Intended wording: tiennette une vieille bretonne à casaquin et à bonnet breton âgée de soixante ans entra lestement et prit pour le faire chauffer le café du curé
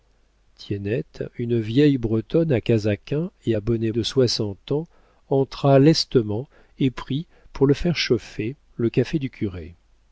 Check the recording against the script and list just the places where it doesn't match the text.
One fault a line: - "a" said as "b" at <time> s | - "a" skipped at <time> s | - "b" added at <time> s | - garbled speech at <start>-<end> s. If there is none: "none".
- "breton âgée" skipped at 3.9 s